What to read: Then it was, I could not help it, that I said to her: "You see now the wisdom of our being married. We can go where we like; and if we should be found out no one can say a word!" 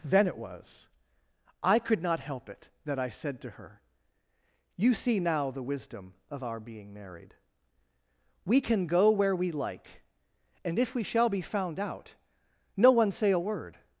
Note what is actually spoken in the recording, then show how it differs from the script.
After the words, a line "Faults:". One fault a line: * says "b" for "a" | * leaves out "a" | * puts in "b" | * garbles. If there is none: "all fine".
Then it was, I could not help it, that I said to her: "You see now the wisdom of our being married. We can go where we like; and if we shall be found out no one say a word!"
Faults:
* says "shall" for "should"
* leaves out "can"